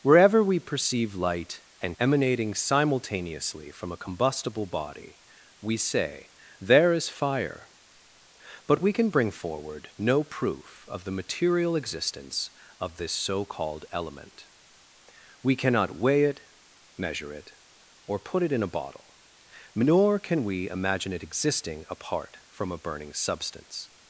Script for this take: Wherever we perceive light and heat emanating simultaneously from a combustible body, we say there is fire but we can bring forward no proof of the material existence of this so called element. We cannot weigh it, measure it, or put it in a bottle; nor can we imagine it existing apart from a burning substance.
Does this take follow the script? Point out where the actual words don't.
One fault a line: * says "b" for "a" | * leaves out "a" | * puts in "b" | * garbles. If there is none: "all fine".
* leaves out "heat"